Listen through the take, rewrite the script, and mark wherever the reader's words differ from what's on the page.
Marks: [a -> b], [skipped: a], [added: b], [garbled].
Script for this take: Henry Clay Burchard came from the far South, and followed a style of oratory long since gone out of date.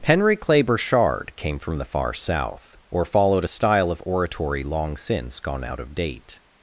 Henry Clay Burchard came from the far South, [and -> or] followed a style of oratory long since gone out of date.